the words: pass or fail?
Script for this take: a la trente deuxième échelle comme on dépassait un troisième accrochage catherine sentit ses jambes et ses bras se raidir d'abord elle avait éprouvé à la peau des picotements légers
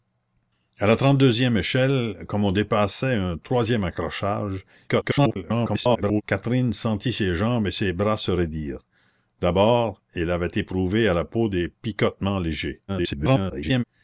fail